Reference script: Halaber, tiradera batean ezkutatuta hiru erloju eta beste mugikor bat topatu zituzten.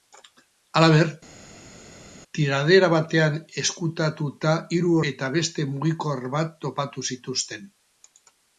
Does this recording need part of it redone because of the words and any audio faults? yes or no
yes